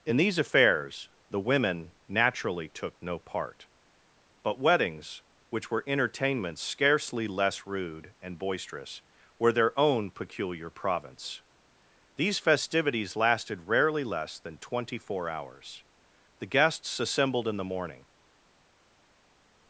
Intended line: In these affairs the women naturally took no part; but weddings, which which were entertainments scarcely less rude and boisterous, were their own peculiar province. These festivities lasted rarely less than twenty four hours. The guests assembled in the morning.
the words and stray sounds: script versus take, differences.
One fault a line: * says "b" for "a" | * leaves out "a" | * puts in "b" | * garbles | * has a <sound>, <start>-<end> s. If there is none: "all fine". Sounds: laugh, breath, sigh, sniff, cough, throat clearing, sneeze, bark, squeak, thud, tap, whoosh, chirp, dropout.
* leaves out "which"